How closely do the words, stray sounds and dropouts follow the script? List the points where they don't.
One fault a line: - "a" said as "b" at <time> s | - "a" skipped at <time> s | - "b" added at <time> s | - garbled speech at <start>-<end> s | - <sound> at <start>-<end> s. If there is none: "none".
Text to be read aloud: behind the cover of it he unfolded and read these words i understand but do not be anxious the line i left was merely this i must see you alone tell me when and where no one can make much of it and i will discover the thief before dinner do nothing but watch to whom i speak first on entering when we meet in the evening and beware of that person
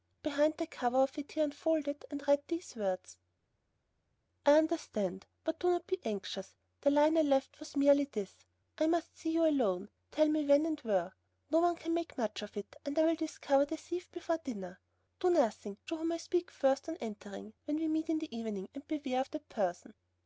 - "but watch" skipped at 15.8 s